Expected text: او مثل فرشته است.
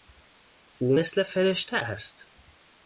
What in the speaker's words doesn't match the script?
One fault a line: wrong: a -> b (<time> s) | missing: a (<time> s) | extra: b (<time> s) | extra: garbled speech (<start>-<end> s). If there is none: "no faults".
no faults